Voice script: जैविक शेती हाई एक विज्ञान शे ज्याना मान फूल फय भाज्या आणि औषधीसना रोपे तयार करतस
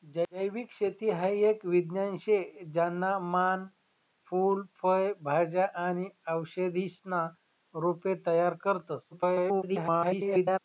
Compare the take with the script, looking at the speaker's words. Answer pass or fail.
fail